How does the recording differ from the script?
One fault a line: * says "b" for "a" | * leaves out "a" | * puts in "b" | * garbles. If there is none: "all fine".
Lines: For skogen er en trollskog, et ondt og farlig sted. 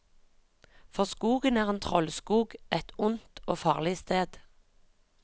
all fine